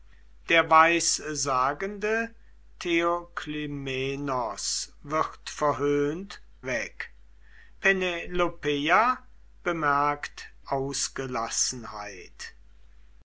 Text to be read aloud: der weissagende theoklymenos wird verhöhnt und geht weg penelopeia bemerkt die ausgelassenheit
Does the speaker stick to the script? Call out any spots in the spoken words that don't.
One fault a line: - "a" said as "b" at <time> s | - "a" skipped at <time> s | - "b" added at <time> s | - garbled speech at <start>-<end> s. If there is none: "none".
- "und geht" skipped at 6.4 s
- "die" skipped at 10.5 s